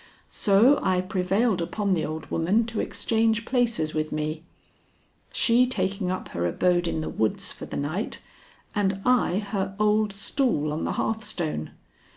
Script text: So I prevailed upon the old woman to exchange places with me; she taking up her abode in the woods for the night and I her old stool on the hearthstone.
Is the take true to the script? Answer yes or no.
yes